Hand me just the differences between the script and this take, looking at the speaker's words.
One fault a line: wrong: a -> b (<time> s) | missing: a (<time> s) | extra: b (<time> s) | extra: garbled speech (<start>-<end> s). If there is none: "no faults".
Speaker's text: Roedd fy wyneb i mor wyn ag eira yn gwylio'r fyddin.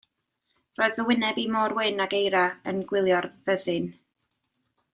no faults